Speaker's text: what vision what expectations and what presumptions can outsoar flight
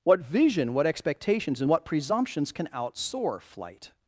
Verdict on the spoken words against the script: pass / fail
pass